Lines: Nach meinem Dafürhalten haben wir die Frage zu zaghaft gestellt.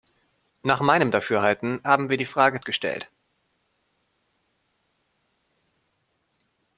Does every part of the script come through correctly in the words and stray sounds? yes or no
no